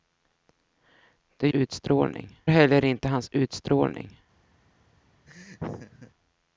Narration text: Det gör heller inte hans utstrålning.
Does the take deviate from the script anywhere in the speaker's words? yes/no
yes